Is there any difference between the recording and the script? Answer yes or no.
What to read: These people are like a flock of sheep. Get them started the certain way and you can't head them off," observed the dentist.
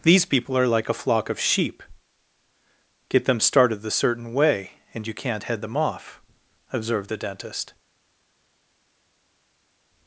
no